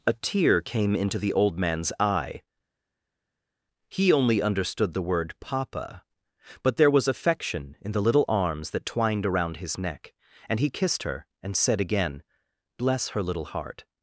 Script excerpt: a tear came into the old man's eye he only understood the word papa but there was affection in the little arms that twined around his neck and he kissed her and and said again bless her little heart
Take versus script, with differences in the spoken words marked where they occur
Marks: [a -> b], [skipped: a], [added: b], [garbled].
a tear came into the old man's eye he only understood the word papa but there was affection in the little arms that twined around his neck and he kissed her and [skipped: and] said again bless her little heart